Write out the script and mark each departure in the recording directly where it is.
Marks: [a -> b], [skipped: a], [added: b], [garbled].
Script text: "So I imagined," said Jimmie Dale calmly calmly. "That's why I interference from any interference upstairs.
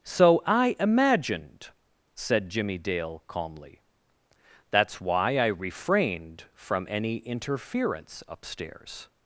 "So I imagined," said Jimmie Dale calmly [skipped: calmly.] "That's why I [interference -> refrained] from any interference upstairs.